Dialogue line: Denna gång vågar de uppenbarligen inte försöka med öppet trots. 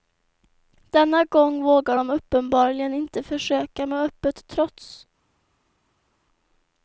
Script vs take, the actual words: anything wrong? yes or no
no